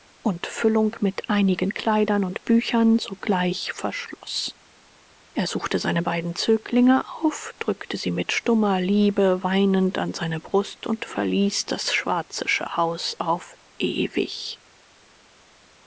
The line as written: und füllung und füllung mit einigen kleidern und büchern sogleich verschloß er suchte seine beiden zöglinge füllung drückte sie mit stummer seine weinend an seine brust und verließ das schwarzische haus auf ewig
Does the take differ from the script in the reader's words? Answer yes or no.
yes